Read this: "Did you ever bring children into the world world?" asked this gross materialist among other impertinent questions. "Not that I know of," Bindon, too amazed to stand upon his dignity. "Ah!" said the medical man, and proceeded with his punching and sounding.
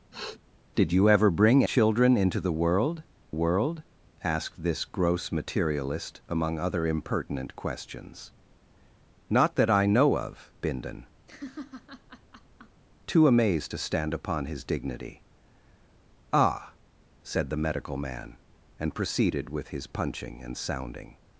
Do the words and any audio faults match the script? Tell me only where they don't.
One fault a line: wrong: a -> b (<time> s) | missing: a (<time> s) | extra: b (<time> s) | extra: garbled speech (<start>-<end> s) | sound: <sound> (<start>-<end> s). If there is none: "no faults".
sound: sniff (0.1-0.4 s)
sound: laugh (11.3-12.8 s)